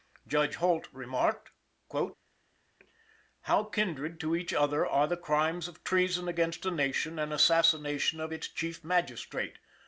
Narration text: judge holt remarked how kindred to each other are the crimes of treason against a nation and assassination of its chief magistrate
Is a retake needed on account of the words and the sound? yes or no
no